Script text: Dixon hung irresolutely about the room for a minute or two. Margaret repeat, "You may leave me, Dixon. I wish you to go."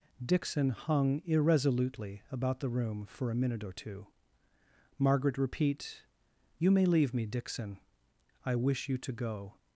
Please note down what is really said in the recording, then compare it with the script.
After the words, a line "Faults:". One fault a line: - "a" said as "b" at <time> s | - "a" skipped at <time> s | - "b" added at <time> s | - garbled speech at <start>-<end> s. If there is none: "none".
Dixon hung irresolutely about the room for a minute or two. Margaret repeat, "You may leave me, Dixon. I wish you to go."
Faults:
none